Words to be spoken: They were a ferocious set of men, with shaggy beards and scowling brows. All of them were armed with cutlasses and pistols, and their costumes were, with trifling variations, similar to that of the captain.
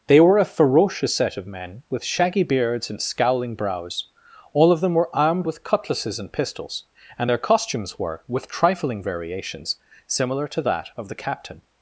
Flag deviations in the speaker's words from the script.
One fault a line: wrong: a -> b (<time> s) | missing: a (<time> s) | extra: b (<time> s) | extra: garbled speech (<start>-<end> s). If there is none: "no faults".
no faults